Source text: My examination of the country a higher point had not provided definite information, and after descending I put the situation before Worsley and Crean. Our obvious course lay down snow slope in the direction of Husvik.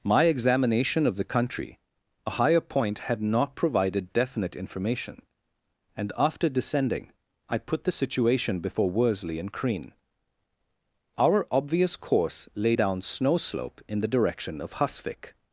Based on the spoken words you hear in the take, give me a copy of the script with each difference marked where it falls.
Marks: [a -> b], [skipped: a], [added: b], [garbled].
My examination of the country a higher point had not provided definite information, and after descending I put the situation before Worsley and Crean. Our obvious course lay down snow slope in the direction of Husvik.